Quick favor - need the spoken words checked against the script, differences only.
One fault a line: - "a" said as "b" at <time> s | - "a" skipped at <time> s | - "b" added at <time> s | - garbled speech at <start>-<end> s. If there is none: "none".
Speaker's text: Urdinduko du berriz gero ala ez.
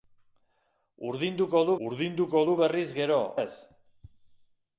- "urdinduko du" added at 1.9 s
- "ala" skipped at 3.2 s